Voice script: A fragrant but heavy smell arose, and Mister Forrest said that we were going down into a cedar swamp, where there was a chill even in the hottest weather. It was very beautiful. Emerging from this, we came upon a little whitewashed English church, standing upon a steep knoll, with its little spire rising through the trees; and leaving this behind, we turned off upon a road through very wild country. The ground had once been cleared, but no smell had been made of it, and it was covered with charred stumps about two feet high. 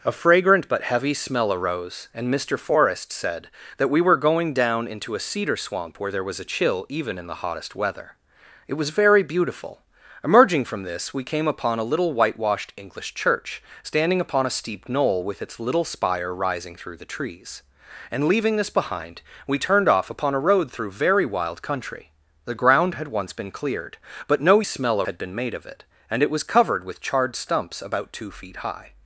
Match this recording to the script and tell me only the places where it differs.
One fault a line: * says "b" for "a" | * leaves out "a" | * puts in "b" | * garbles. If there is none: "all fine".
all fine